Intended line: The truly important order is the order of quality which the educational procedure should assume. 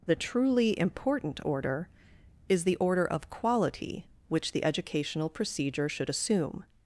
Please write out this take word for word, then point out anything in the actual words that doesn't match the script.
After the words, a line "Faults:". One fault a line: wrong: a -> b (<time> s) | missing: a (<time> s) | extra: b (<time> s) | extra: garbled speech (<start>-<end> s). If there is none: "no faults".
The truly important order is the order of quality which the educational procedure should assume.
Faults:
no faults